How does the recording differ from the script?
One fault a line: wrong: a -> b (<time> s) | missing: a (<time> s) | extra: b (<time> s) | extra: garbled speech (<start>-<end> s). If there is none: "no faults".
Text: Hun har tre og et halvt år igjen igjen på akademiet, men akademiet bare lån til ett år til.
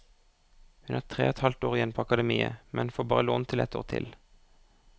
missing: igjen (1.9 s)
wrong: akademiet -> får (3.0 s)